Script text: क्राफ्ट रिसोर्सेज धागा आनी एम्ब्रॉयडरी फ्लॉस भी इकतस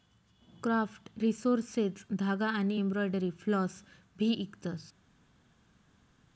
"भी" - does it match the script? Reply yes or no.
yes